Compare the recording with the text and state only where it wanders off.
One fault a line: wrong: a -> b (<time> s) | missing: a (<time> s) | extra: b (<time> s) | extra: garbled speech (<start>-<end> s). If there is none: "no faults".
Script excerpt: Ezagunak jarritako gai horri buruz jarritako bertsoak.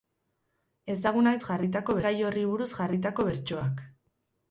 no faults